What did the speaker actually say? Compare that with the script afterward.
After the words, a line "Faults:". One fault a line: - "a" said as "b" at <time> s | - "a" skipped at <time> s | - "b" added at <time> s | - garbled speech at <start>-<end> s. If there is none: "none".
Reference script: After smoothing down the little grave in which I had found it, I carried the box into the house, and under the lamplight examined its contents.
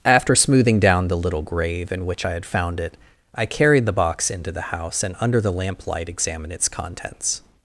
After smoothing down the little grave in which I had found it, I carried the box into the house, and under the lamplight examined its contents.
Faults:
none